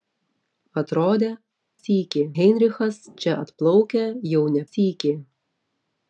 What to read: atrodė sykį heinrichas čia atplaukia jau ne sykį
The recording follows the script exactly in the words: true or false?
true